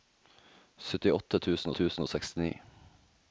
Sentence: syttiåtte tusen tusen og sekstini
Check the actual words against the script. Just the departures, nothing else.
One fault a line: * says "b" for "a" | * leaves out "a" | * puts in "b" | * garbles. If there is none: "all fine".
all fine